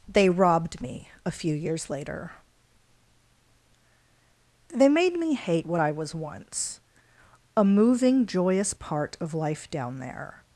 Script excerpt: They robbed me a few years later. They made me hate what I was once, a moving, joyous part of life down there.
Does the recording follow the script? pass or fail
pass